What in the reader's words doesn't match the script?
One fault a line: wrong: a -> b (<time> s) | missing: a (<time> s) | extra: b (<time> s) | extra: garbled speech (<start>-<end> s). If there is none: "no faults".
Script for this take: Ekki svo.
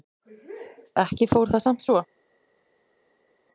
extra: fór það samt (1.4 s)